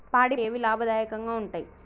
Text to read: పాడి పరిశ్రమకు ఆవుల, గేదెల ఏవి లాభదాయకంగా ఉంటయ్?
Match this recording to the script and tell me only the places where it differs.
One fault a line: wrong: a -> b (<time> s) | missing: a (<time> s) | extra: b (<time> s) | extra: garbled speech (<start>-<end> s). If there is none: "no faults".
missing: పరిశ్రమకు ఆవుల గేదెల (0.4 s)